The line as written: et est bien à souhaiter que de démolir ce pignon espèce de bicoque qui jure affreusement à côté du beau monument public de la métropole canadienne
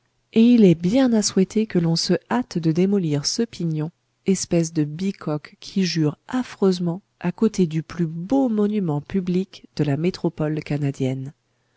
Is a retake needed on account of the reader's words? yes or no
yes